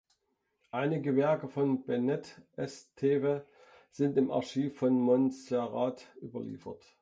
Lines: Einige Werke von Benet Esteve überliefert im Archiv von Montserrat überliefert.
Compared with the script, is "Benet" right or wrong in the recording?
right